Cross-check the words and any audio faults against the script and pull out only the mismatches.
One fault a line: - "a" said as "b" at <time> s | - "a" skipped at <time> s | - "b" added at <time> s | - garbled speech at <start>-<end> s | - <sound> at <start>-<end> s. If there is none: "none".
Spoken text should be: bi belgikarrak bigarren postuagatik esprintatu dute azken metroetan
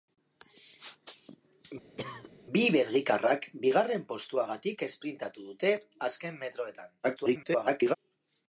- cough at 2.0-2.3 s
- garbled speech at 7.0-8.0 s